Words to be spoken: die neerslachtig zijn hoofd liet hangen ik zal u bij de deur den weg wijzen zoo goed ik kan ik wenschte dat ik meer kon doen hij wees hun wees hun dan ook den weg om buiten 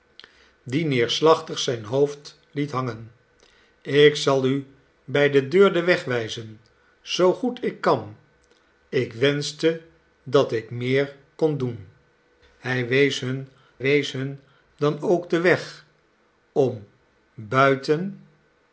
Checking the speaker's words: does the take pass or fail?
pass